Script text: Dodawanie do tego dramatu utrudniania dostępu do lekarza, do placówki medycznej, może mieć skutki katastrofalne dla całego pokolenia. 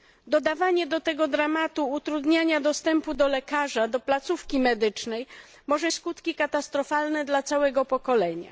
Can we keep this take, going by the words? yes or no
no